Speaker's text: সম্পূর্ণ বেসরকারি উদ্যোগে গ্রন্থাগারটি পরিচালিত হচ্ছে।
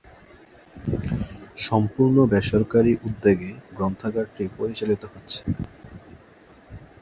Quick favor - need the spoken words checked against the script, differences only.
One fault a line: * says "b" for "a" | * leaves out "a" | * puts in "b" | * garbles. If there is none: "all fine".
all fine